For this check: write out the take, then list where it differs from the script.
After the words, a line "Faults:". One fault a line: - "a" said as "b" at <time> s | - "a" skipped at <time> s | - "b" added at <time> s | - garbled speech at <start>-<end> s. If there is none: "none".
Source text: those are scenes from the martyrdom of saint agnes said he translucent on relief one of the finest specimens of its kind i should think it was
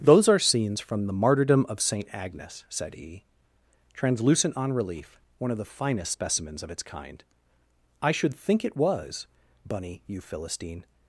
those are scenes from the martyrdom of saint agnes said he translucent on relief one of the finest specimens of its kind i should think it was bunny you philistine
Faults:
- "bunny you philistine" added at 9.7 s